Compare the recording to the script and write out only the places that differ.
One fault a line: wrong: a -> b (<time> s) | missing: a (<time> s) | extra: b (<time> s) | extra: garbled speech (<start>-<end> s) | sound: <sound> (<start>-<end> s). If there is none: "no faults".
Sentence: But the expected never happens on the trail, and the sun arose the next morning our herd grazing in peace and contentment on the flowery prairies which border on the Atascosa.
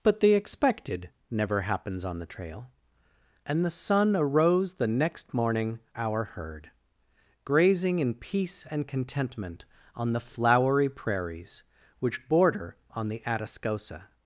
no faults